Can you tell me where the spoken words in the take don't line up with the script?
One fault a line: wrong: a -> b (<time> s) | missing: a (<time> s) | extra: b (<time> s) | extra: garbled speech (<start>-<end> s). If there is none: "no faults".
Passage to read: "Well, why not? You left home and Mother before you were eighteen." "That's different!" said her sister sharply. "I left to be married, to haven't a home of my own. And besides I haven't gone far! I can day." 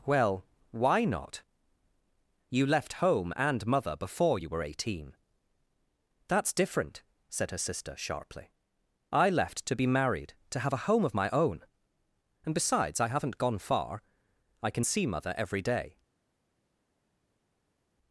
wrong: haven't -> have (10.6 s)
extra: see Mother every (14.8 s)